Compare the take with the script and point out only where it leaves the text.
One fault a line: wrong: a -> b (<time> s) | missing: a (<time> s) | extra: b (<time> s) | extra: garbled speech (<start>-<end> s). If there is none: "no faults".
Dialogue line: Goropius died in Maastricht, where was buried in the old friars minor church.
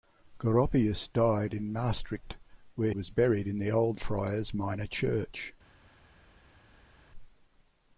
no faults